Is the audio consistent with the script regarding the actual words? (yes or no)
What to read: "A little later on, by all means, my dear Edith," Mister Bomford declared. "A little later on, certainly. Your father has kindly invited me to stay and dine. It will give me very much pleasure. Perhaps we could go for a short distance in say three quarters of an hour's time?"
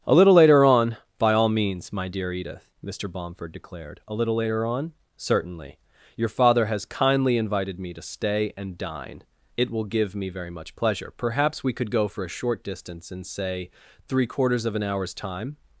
yes